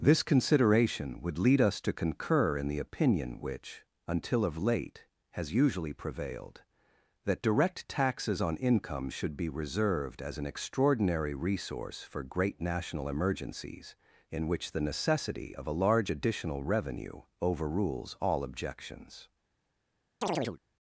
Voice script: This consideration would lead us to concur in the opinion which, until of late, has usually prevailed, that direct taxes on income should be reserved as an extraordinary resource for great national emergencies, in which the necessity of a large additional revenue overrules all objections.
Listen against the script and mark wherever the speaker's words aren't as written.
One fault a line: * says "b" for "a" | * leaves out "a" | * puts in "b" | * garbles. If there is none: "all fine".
all fine